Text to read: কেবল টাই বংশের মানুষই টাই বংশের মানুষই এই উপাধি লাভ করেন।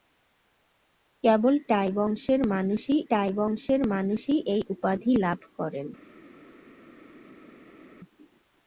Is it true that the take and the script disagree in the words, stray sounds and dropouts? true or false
false